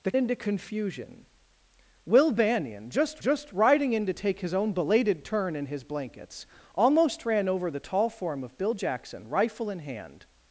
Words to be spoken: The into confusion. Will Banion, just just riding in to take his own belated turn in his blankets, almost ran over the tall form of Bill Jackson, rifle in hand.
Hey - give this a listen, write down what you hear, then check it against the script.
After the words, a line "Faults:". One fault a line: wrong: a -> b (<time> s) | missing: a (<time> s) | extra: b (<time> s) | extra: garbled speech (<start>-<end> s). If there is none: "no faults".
The into confusion. Will Banion, just just riding in to take his own belated turn in his blankets, almost ran over the tall form of Bill Jackson, rifle in hand.
Faults:
no faults